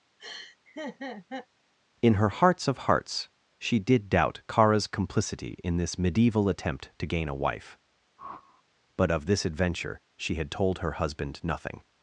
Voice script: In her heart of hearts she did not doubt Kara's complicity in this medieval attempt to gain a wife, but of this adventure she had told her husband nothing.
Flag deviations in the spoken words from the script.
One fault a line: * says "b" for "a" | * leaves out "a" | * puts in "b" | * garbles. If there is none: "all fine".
* says "hearts" for "heart"
* leaves out "not"